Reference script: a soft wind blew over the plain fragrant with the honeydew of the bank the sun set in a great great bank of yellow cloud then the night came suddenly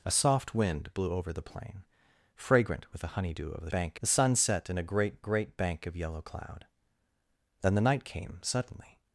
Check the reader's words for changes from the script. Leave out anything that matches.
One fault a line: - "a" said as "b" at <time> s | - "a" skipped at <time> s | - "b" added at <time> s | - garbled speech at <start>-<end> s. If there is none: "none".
none